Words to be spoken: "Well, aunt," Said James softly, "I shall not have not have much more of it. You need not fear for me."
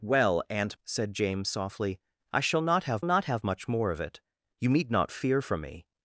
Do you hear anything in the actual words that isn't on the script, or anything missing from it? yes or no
no